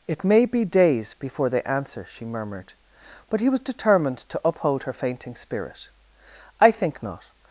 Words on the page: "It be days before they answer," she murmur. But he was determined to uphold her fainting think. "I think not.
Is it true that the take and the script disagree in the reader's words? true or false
true